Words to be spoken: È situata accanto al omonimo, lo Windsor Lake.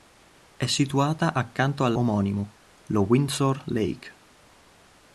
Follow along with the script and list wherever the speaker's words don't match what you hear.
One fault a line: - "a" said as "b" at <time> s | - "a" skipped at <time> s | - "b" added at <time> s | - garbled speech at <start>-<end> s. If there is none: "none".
none